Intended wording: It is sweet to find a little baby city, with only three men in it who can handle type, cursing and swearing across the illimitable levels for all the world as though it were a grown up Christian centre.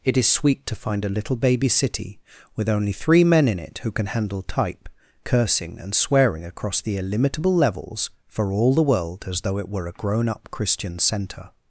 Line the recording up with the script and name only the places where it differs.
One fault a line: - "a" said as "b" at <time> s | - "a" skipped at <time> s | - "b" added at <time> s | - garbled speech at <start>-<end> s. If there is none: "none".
none